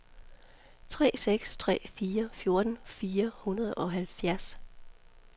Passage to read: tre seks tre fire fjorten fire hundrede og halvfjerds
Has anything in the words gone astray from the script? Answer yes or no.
no